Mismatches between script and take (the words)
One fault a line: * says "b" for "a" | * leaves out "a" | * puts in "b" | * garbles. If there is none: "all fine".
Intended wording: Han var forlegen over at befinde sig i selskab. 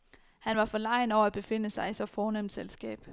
* puts in "så fornemt"